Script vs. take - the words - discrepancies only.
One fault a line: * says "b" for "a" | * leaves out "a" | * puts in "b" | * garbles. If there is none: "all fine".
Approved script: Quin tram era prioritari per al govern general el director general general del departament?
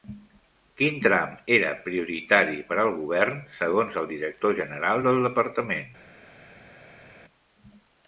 * says "segons" for "general"
* leaves out "general"